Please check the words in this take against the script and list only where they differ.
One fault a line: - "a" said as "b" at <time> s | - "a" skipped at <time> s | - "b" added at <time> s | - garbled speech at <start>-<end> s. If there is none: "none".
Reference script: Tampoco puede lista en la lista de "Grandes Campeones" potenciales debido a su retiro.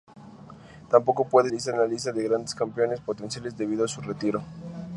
none